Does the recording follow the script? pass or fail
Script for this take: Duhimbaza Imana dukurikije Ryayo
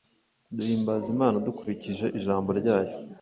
fail